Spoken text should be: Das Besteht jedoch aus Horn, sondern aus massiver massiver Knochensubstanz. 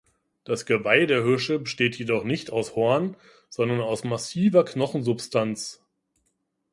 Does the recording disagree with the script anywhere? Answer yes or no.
yes